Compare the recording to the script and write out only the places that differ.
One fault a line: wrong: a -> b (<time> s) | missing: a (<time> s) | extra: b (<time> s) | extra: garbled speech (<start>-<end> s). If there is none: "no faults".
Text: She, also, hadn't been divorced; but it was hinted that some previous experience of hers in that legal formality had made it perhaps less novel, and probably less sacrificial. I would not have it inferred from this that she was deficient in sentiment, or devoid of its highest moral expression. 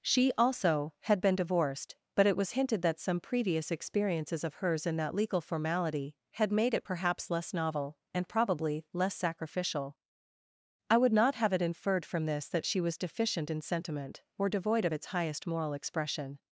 wrong: hadn't -> had (1.0 s)
wrong: experience -> experiences (3.7 s)